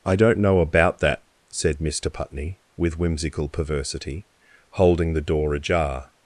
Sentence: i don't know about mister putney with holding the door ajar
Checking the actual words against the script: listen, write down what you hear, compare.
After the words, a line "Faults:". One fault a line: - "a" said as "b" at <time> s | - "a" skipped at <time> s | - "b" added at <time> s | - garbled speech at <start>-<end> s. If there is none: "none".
i don't know about that said mister putney with whimsical perversity holding the door ajar
Faults:
- "that said" added at 1.0 s
- "whimsical perversity" added at 3.0 s